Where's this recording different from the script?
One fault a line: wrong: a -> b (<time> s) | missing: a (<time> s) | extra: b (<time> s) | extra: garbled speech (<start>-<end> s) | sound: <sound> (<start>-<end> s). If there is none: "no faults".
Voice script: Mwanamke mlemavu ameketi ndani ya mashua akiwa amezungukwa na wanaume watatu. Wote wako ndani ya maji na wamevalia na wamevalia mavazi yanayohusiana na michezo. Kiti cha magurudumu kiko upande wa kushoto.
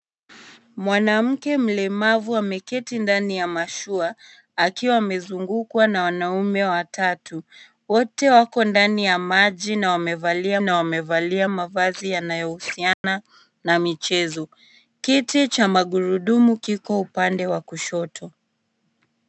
sound: dropout (12.9-13.0 s)